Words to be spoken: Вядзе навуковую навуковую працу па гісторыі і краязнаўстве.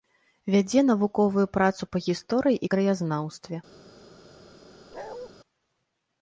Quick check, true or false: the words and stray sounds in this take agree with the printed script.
false